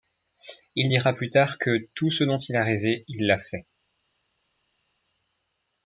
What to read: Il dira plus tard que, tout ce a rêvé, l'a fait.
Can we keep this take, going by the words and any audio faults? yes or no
no